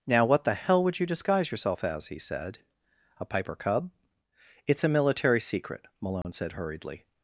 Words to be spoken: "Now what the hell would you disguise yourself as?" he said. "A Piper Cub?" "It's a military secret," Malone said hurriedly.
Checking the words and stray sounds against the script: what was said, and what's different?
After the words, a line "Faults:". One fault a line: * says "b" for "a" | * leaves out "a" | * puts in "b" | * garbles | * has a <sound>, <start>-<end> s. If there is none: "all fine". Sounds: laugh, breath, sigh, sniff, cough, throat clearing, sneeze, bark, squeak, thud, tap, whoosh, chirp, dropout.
"Now what the hell would you disguise yourself as?" he said. "A Piper Cub?" "It's a military secret," Malone said hurriedly.
Faults:
* has a dropout, 6.2-6.2 s